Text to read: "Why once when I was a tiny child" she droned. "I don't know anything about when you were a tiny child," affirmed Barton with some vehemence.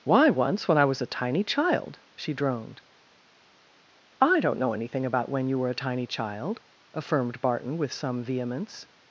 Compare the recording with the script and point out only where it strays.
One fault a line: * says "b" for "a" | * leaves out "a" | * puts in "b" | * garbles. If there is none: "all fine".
all fine